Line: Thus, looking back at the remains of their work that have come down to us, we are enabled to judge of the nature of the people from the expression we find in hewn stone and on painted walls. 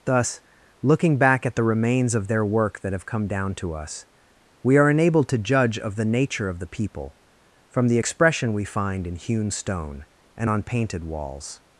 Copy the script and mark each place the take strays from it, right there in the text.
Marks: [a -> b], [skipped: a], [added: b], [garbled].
Thus, looking back at the remains of their work that have come down to us, we are enabled to judge of the nature of the people from the expression we find in hewn stone and on painted walls.